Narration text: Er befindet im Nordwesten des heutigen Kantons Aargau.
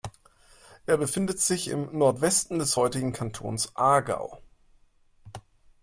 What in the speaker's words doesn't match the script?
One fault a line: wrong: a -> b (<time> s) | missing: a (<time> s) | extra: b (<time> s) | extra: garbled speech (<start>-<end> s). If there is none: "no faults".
extra: sich (1.4 s)